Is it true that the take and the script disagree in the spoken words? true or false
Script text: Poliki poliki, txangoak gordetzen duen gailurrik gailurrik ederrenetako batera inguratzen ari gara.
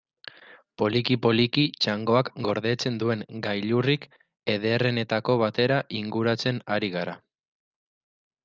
true